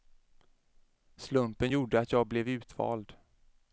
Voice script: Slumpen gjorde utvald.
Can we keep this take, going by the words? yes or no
no